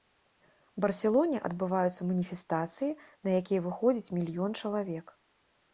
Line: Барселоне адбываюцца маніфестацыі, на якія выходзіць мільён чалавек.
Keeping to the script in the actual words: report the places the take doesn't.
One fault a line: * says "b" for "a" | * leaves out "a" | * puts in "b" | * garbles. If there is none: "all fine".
all fine